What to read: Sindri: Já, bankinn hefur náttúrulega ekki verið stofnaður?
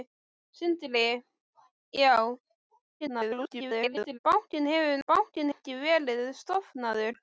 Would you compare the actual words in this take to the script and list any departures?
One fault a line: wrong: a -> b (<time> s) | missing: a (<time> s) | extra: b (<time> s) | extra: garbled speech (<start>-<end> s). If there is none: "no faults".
extra: garbled speech (3.0-4.2 s)
wrong: náttúrulega -> bankinn (5.1 s)